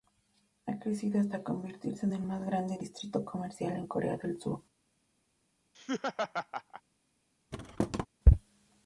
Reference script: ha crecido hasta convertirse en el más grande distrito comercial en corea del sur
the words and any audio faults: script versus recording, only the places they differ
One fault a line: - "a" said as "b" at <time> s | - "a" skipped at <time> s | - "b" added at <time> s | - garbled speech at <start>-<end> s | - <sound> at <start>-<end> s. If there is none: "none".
- laugh at 5.7-6.8 s
- thud at 7.5-8.1 s